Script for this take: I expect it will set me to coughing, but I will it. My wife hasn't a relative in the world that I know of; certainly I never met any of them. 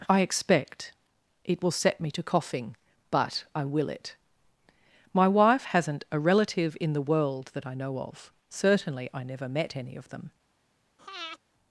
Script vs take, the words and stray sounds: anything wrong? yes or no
yes